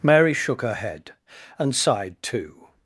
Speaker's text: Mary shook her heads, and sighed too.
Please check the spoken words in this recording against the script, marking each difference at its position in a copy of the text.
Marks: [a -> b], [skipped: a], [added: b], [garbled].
Mary shook her [heads, -> head] and sighed too.